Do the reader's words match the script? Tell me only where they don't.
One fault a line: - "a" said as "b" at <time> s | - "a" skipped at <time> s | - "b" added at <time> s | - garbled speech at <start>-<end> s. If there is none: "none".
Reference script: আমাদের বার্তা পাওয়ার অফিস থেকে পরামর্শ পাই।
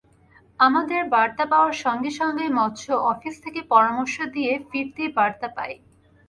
- "সঙ্গে সঙ্গেই মৎস্য" added at 1.8 s
- "দিয়ে ফিরতি বার্তা" added at 4.3 s